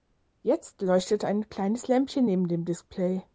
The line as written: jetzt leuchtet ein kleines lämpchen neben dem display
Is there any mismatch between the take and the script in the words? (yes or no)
no